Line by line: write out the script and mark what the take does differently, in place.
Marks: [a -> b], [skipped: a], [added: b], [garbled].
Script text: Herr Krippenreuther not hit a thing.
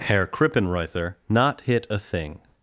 Herr Krippenreuther not hit a thing.